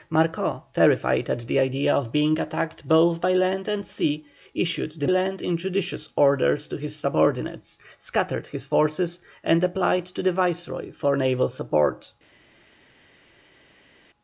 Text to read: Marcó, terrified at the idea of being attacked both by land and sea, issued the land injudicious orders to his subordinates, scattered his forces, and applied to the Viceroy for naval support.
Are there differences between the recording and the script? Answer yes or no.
no